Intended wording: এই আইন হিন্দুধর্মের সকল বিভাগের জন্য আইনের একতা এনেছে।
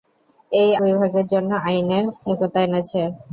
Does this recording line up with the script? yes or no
no